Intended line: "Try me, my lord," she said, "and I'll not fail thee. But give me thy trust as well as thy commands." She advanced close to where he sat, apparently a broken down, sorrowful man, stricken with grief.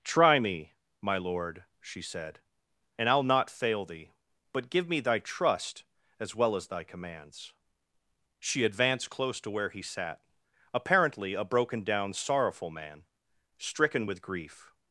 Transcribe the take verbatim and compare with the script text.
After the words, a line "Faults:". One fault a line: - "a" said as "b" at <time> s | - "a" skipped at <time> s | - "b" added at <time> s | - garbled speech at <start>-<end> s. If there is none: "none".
"Try me, my lord," she said, "and I'll not fail thee. But give me thy trust as well as thy commands." She advanced close to where he sat, apparently a broken down, sorrowful man, stricken with grief.
Faults:
none